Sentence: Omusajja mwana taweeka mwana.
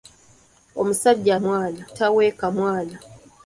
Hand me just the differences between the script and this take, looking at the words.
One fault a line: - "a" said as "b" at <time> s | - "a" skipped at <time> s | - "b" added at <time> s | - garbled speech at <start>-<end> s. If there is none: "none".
none